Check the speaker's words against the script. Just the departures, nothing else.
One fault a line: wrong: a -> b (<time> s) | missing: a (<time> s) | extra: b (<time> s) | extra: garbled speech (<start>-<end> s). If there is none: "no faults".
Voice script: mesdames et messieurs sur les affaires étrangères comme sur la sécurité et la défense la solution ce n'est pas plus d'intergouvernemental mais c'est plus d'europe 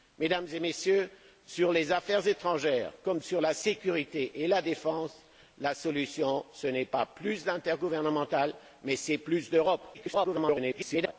extra: garbled speech (9.9-11.1 s)